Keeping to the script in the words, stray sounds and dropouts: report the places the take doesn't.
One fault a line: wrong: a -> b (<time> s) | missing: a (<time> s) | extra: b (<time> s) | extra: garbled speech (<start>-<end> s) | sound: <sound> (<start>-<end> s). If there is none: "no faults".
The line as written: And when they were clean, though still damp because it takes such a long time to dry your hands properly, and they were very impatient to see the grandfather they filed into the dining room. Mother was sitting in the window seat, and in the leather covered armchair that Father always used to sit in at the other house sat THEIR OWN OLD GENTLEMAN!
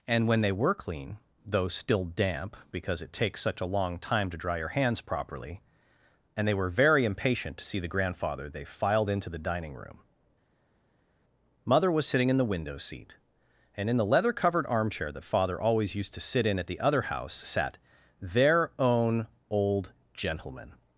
no faults